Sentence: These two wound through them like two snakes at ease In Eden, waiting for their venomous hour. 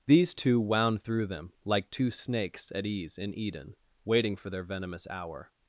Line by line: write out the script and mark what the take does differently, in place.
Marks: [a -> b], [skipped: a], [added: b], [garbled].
These two wound through them like two snakes at ease In Eden, waiting for their venomous hour.